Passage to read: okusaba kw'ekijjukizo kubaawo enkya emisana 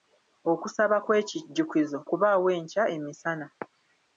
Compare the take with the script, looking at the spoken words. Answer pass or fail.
pass